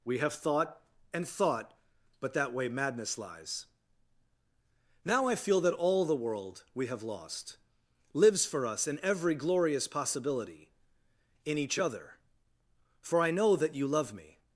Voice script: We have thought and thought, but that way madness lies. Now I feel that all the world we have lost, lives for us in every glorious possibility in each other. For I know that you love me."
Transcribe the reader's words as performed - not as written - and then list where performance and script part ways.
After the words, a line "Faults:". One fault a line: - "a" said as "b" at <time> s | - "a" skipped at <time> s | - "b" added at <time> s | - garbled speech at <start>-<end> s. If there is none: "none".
We have thought and thought, but that way madness lies. Now I feel that all the world we have lost, lives for us in every glorious possibility in each other. For I know that you love me."
Faults:
none